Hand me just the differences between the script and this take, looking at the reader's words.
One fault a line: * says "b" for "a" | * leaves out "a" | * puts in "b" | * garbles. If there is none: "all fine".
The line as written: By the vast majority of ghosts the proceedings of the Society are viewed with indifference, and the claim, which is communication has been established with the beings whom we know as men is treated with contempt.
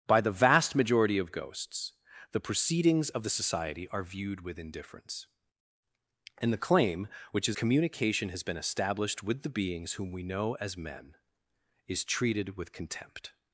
all fine